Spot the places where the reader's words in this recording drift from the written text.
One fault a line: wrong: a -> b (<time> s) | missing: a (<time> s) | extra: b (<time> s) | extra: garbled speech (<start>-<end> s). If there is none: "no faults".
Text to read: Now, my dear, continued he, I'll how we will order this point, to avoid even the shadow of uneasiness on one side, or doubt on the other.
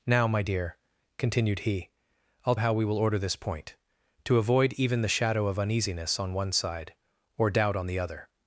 no faults